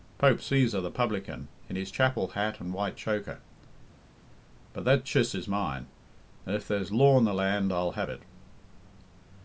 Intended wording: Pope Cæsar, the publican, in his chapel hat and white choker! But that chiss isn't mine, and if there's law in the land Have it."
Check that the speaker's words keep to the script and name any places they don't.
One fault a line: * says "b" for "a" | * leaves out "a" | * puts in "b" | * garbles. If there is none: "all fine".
* says "is" for "isn't"
* puts in "I'll"